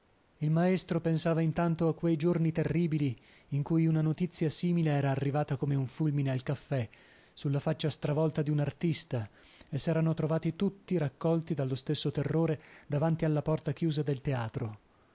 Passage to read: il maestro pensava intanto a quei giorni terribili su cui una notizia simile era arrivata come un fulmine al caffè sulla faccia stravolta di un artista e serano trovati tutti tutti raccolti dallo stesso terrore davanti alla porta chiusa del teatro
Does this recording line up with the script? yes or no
no